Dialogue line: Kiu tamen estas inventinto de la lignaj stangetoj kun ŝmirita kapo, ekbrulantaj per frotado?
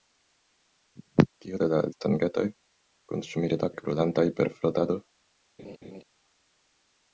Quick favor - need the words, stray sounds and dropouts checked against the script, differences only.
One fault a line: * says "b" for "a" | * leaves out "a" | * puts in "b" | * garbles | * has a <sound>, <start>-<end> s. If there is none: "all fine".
* leaves out "tamen estas inventinto"
* leaves out "lignaj"
* leaves out "kapo"
* has a laugh, 5.6-6.0 s